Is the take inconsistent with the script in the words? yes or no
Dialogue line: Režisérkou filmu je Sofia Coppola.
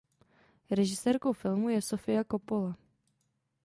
no